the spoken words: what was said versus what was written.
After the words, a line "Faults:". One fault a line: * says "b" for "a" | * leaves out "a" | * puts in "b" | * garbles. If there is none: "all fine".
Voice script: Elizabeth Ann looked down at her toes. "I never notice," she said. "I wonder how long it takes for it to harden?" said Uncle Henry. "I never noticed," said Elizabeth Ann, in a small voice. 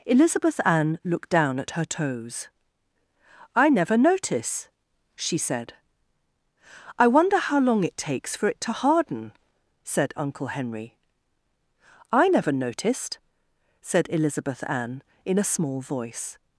Elizabeth Ann looked down at her toes. "I never notice," she said. "I wonder how long it takes for it to harden?" said Uncle Henry. "I never noticed," said Elizabeth Ann, in a small voice.
Faults:
all fine